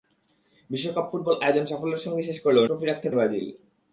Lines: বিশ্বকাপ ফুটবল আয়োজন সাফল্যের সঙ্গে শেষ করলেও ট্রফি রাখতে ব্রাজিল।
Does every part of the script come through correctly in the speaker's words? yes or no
yes